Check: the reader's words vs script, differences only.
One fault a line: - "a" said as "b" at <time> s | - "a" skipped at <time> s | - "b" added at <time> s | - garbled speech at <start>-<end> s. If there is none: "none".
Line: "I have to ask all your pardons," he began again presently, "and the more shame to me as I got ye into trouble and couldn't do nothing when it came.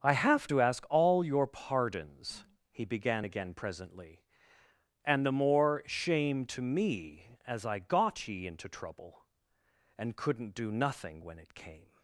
none